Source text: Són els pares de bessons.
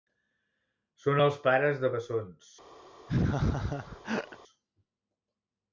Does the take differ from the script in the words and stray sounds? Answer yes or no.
yes